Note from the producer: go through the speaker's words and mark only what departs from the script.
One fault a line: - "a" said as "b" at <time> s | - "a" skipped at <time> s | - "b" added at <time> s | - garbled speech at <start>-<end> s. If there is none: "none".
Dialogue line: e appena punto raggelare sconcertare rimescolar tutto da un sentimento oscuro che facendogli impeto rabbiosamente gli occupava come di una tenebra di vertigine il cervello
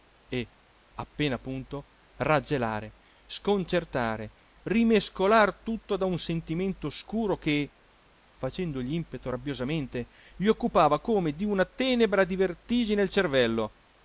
none